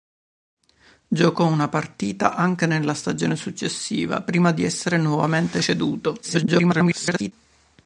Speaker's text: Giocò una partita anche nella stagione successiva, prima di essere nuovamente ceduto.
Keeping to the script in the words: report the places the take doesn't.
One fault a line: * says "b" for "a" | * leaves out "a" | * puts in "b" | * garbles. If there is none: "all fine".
* garbles